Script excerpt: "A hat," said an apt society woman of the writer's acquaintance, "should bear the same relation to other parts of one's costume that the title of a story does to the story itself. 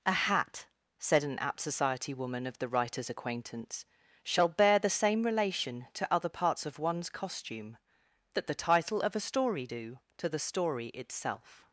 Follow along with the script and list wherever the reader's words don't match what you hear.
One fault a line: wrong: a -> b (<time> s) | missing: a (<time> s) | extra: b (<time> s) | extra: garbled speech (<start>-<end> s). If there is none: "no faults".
wrong: should -> shall (4.2 s)
wrong: does -> do (9.6 s)